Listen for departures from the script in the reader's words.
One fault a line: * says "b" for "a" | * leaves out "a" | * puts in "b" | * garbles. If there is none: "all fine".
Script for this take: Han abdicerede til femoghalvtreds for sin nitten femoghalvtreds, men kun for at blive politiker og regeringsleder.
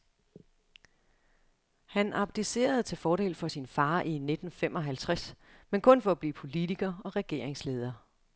* says "fordel" for "femoghalvtreds"
* puts in "far i"